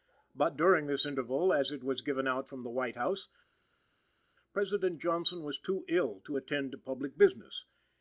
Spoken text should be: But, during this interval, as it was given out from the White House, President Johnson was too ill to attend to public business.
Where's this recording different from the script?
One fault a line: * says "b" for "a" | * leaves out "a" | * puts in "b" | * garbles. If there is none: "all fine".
all fine